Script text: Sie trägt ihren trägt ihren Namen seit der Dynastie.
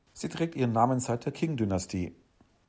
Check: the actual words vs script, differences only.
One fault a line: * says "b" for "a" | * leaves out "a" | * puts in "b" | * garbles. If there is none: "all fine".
* leaves out "trägt ihren"
* puts in "Qing"